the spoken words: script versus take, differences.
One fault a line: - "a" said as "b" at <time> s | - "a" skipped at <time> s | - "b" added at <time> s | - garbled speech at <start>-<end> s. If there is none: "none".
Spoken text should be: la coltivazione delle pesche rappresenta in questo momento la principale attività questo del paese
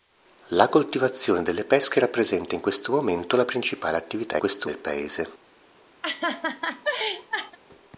none